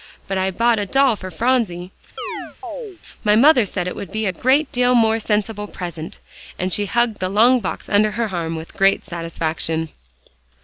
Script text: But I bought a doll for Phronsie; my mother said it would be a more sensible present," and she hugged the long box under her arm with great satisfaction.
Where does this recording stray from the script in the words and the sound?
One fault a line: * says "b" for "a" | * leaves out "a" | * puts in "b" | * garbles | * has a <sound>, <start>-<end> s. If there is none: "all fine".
* has a chirp, 2.2-3.0 s
* puts in "great deal"